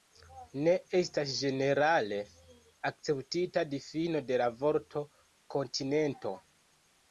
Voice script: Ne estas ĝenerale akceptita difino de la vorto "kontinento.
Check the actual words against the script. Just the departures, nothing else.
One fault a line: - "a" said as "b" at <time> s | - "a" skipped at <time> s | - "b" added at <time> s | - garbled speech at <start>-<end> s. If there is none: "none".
none